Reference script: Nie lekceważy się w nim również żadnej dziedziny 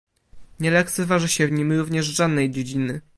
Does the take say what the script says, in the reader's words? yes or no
yes